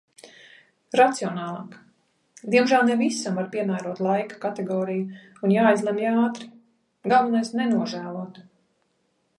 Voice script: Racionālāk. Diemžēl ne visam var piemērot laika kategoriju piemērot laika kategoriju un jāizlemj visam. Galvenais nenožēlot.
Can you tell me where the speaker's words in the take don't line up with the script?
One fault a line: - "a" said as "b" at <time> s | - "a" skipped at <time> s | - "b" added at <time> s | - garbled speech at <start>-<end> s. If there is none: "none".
- "piemērot laika kategoriju" skipped at 5.2 s
- "visam" said as "ātri" at 6.1 s